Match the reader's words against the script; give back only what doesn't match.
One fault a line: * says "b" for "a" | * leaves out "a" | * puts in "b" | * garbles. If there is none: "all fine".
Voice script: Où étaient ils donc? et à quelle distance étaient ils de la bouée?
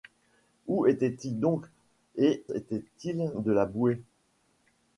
* leaves out "à quelle distance"